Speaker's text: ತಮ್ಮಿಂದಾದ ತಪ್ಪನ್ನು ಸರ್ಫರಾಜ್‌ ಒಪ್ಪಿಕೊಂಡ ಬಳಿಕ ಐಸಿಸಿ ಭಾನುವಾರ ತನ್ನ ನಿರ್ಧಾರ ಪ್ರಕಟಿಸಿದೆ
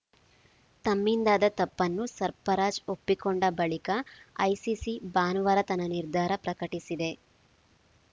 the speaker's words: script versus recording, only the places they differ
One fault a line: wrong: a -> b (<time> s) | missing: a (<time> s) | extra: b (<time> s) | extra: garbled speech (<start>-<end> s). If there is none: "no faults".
no faults